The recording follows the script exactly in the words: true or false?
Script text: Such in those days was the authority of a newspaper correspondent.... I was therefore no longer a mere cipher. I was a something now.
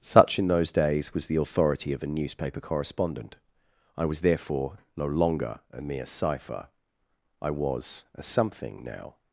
true